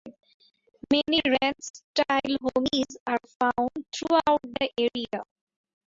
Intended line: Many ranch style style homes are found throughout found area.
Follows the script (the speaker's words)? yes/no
no